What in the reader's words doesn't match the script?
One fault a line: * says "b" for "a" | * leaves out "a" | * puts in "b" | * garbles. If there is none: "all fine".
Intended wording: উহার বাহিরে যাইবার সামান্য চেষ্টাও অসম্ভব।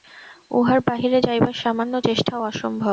all fine